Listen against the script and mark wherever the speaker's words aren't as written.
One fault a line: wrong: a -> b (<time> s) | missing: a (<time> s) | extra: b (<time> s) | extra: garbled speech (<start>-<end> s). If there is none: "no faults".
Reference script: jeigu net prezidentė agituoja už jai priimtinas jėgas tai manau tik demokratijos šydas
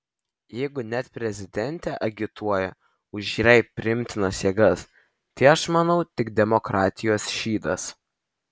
extra: aš (5.6 s)